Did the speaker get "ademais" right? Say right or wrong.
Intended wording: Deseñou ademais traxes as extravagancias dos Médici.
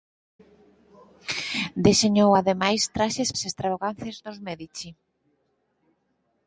right